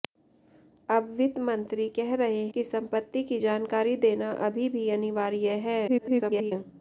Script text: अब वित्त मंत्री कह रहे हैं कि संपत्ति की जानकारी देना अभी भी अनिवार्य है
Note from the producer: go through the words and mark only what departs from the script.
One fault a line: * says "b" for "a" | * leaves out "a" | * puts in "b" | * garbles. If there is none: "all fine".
* leaves out "हैं"
* garbles